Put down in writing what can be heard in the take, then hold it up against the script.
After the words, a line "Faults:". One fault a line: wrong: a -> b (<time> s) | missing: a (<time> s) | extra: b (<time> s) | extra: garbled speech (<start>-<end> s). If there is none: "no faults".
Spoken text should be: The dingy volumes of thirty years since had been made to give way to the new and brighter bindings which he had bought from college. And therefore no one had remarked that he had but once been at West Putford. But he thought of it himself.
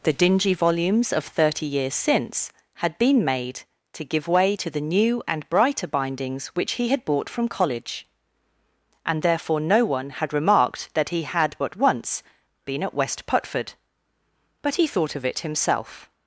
The dingy volumes of thirty years since had been made to give way to the new and brighter bindings which he had bought from college. And therefore no one had remarked that he had but once been at West Putford. But he thought of it himself.
Faults:
no faults